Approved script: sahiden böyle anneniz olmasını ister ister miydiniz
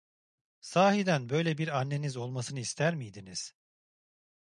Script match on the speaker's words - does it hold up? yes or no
no